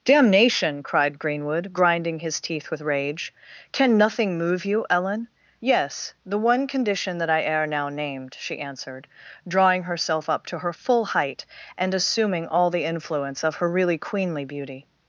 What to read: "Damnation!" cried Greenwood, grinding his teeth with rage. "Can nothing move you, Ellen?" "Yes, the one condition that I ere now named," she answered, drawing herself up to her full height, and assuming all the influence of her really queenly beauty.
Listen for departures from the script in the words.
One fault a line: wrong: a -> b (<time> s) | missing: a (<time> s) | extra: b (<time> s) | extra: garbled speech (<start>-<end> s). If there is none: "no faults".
no faults